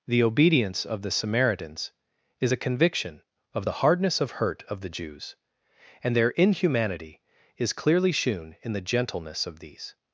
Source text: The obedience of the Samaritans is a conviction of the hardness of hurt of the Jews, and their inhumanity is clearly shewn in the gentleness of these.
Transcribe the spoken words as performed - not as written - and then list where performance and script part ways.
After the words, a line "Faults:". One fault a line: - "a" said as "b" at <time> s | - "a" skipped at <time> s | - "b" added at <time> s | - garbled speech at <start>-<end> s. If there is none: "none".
The obedience of the Samaritans is a conviction of the hardness of hurt of the Jews, and their inhumanity is clearly shewn in the gentleness of these.
Faults:
none